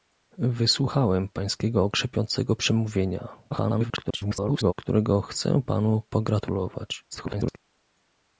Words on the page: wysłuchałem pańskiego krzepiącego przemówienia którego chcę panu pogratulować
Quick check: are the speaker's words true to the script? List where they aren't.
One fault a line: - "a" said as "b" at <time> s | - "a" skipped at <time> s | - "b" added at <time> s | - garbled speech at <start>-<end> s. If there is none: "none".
- garbled speech at 3.5-4.7 s
- garbled speech at 7.1-7.6 s